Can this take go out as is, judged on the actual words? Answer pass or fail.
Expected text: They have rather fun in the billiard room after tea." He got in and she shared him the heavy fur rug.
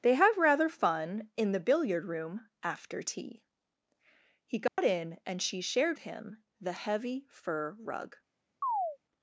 pass